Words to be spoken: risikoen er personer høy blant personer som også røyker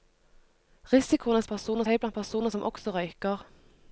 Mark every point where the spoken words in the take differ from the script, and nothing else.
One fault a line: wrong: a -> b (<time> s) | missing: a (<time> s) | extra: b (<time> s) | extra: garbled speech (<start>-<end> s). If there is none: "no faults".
no faults